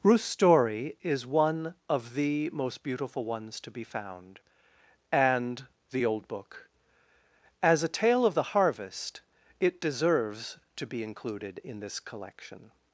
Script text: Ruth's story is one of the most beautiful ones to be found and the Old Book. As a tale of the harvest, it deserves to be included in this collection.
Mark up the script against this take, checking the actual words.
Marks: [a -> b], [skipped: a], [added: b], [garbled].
Ruth's story is one of the most beautiful ones to be found and the Old Book. As a tale of the harvest, it deserves to be included in this collection.